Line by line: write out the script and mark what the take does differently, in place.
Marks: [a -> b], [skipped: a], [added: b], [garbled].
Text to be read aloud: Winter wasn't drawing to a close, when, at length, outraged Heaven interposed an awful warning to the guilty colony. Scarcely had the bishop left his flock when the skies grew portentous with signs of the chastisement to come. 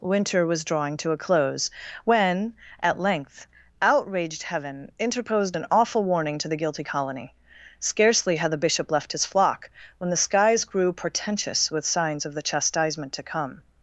Winter [wasn't -> was] drawing to a close, when, at length, outraged Heaven interposed an awful warning to the guilty colony. Scarcely had the bishop left his flock when the skies grew portentous with signs of the chastisement to come.